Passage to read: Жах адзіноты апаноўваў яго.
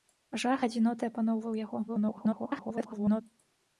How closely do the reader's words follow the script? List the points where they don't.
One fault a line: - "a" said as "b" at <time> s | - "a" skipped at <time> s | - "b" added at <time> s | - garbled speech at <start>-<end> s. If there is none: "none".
- garbled speech at 1.9-3.2 s